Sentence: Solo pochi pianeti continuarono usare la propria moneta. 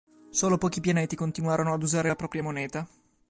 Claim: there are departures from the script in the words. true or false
true